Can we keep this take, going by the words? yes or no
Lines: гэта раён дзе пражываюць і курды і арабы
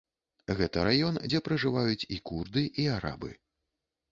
yes